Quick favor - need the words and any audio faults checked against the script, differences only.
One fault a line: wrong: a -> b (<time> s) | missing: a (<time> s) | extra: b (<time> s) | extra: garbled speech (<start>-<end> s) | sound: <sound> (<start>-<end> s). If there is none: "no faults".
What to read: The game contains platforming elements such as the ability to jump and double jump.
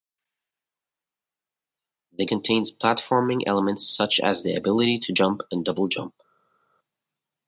missing: game (2.2 s)